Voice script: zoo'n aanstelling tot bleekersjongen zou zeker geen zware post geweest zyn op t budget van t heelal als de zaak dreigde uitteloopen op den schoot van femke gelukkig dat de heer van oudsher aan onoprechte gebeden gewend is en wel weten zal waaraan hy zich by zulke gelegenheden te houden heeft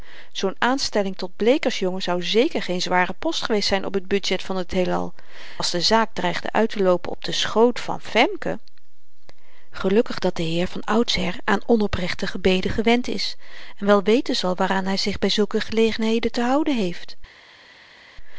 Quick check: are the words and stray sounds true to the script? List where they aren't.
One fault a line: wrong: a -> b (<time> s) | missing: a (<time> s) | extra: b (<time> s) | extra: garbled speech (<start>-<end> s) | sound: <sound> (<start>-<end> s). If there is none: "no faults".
no faults